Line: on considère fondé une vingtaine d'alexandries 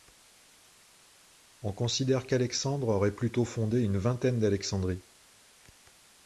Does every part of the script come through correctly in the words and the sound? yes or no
no